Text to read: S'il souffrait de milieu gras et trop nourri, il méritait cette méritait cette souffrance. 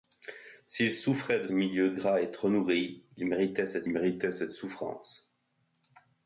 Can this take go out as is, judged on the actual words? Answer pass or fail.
pass